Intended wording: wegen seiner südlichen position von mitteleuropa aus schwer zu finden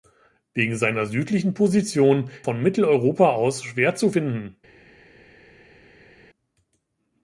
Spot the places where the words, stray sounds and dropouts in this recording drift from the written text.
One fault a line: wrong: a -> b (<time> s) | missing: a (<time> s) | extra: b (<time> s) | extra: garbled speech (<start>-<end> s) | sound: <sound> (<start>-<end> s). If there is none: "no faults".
no faults